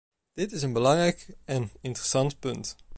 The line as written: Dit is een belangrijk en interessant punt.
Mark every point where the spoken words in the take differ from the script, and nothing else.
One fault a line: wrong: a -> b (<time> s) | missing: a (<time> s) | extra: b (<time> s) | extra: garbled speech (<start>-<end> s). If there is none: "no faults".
no faults